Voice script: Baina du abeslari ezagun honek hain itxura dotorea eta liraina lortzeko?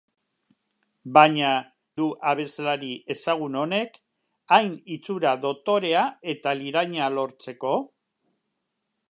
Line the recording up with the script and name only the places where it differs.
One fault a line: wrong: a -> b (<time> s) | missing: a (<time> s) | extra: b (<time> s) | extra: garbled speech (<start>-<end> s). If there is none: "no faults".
no faults